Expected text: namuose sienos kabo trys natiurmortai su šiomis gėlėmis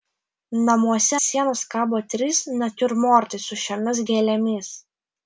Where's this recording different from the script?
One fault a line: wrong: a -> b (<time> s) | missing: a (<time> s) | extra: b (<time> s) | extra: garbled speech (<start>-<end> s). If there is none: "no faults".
no faults